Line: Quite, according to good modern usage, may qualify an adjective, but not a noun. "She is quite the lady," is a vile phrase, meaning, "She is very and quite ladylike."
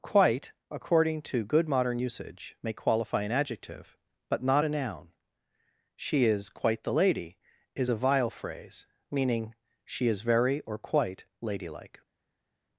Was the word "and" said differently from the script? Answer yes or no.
yes